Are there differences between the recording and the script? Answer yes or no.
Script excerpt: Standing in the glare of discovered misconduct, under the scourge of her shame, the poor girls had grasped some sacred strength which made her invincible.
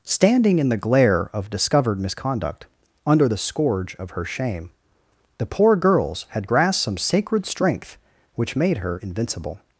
no